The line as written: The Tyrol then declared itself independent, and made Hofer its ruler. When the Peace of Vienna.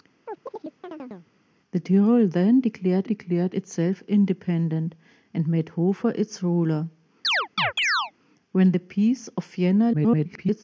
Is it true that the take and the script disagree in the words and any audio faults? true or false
true